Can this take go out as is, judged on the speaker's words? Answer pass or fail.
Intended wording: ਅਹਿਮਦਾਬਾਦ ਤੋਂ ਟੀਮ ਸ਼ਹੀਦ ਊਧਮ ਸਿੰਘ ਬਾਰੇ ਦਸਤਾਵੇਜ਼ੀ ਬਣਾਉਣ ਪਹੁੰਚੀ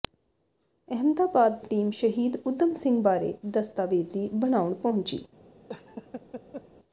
fail